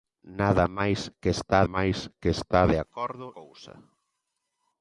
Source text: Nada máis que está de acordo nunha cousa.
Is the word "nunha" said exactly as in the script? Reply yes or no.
no